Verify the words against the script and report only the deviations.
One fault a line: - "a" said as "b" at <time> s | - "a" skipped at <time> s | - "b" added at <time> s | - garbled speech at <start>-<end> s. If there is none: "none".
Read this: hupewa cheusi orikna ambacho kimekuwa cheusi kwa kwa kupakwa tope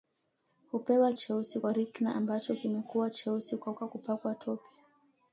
none